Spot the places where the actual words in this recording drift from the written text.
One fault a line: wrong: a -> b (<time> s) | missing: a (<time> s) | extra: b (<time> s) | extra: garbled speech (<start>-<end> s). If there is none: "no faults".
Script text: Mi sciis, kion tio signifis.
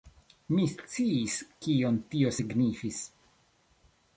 no faults